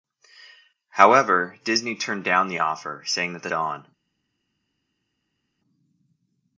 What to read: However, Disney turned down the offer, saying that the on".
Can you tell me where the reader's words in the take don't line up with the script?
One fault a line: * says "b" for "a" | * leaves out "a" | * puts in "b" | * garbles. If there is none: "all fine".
all fine